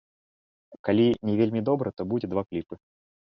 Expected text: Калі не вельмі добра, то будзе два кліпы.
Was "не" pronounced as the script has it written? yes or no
yes